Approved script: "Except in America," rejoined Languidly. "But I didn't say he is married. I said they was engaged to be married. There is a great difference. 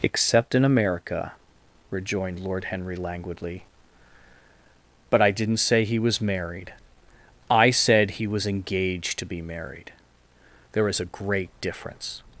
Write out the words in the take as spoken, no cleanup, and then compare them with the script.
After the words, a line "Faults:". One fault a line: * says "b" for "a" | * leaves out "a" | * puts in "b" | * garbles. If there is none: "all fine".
"Except in America," rejoined Lord Henry languidly. "But I didn't say he was married. I said he was engaged to be married. There is a great difference.
Faults:
* puts in "Lord Henry"
* says "was" for "is"
* says "he" for "they"